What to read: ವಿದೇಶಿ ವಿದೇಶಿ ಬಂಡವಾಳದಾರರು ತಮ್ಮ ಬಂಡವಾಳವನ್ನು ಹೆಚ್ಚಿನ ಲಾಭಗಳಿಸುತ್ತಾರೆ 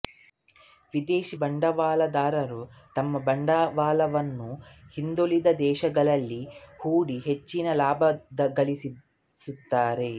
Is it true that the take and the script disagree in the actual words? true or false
true